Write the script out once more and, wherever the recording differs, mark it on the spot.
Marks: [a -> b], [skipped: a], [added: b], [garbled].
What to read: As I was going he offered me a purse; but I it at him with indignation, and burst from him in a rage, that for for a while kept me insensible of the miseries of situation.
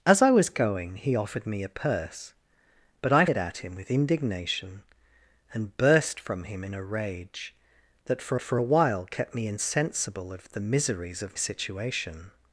As I was going he offered me a purse; but I it at him with indignation, and burst from him in a rage, that for for a while kept me insensible of the miseries of situation.